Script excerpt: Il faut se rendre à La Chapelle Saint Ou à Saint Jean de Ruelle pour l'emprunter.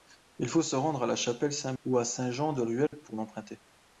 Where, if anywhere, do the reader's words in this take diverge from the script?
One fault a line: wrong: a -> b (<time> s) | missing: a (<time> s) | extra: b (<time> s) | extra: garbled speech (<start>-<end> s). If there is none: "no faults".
no faults